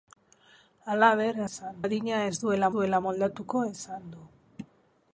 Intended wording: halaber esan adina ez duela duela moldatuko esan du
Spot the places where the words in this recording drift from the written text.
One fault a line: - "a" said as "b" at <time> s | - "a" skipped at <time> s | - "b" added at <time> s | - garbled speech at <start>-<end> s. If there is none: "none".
none